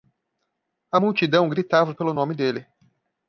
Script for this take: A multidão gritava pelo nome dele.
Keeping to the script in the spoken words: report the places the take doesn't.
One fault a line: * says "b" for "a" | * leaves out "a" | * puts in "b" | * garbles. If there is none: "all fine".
all fine